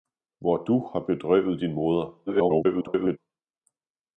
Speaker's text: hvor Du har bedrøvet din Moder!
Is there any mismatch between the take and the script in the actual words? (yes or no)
yes